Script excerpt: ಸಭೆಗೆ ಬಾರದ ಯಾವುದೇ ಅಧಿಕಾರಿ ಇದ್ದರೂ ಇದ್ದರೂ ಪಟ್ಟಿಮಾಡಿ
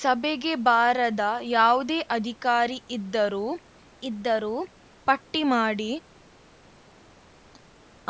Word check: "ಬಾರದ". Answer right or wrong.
right